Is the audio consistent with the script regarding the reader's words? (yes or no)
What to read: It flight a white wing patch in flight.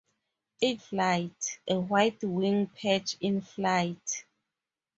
yes